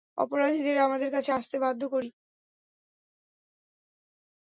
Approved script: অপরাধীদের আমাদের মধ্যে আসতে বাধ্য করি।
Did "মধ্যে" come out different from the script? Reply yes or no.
yes